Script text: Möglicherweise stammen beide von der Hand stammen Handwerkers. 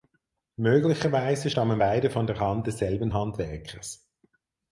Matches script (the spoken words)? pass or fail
fail